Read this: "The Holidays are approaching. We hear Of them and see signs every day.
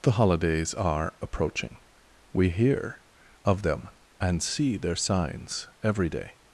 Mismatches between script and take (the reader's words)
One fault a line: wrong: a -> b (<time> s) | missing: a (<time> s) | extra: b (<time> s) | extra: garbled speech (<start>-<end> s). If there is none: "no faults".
extra: their (4.8 s)